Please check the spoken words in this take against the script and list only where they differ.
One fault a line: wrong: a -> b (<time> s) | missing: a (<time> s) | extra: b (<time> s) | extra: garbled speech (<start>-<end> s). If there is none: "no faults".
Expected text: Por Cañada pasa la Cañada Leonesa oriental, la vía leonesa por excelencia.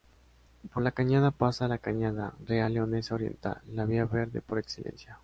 extra: La (0.8 s)
extra: Real (2.5 s)
wrong: leonesa -> verde (4.1 s)